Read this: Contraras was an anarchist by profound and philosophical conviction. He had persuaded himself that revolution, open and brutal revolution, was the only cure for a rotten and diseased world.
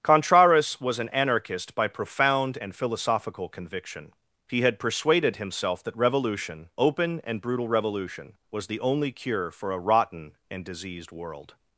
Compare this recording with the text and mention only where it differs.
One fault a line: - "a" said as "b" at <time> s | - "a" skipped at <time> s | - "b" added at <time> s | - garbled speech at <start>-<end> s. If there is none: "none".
none